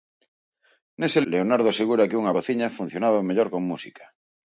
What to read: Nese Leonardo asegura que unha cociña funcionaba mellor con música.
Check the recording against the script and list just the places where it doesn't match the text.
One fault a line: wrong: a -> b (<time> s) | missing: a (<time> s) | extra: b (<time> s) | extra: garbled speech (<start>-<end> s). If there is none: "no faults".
no faults